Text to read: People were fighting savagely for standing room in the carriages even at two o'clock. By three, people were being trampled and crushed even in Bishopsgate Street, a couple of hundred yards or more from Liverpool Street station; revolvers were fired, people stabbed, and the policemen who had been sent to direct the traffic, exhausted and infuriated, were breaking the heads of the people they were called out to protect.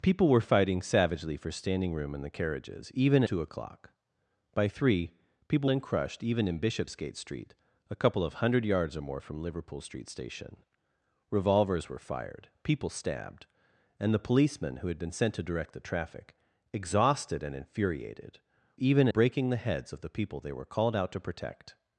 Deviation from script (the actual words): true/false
true